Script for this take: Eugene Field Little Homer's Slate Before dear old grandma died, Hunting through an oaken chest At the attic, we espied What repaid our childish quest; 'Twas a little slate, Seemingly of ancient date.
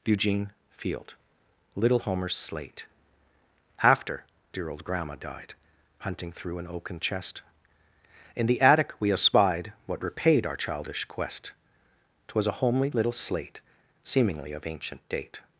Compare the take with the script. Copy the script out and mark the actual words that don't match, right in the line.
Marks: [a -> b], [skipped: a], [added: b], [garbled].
Eugene Field Little Homer's Slate [Before -> AFTER] dear old grandma died, Hunting through an oaken chest [At -> In] the attic, we espied What repaid our childish quest; 'Twas a [added: homely] little slate, Seemingly of ancient date.